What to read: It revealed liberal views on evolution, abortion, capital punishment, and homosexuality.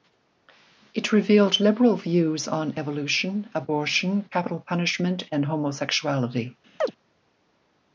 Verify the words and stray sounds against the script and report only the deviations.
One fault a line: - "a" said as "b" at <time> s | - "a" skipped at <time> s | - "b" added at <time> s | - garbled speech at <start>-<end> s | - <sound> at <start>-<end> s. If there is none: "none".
- chirp at 6.8-6.9 s